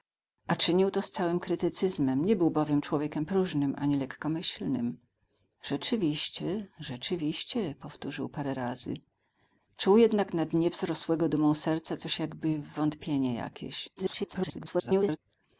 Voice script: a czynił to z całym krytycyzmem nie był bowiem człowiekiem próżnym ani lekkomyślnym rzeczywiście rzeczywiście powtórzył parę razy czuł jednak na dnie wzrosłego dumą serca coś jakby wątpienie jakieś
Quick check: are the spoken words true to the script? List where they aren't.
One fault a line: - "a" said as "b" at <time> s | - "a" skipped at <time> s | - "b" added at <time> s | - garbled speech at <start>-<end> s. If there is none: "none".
- garbled speech at 14.0-15.2 s